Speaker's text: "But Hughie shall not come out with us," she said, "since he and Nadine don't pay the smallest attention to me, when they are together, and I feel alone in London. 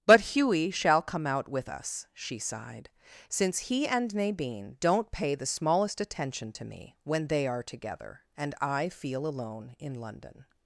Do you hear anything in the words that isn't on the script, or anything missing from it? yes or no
yes